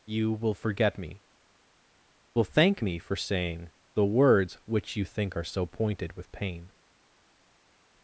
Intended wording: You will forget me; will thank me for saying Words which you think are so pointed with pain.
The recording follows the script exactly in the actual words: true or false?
false